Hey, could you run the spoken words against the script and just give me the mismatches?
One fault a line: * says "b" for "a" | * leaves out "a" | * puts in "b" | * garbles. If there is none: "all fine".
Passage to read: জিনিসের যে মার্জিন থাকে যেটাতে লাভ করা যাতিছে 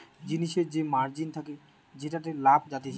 * leaves out "করা"